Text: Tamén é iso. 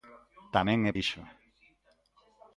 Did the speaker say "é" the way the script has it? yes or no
yes